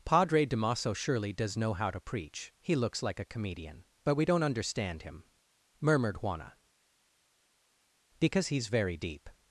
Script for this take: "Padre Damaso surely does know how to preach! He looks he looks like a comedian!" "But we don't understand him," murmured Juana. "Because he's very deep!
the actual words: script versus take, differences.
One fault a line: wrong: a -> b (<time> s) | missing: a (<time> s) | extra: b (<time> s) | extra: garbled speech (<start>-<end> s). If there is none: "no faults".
missing: he looks (3.0 s)